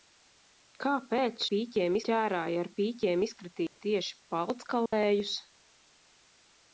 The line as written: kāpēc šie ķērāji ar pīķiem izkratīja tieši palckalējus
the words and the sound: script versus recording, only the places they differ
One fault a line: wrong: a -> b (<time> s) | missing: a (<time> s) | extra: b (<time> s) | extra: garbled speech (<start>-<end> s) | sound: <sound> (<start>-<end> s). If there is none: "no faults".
wrong: šie -> pīķiem (1.5 s)
sound: dropout (3.7-3.8 s)
sound: dropout (4.9-4.9 s)